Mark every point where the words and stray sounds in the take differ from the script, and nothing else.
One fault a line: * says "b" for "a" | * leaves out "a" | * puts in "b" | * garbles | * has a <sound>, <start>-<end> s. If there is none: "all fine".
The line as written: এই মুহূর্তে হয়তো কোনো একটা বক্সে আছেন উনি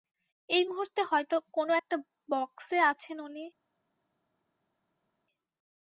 all fine